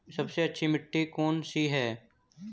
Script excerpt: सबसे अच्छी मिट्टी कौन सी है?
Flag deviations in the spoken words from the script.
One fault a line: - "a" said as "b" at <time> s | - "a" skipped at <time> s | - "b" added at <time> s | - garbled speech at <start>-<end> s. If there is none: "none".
none